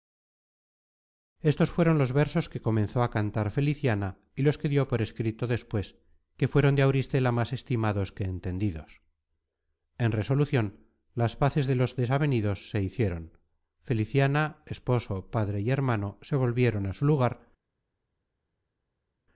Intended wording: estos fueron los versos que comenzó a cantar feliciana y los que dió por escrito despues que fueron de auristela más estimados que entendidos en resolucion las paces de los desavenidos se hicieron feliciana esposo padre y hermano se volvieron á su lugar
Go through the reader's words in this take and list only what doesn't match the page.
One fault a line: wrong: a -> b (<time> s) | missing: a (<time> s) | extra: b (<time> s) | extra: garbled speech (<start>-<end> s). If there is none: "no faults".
no faults